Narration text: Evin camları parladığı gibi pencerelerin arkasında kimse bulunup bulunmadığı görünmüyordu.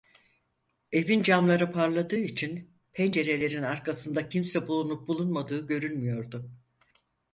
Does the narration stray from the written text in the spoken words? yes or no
yes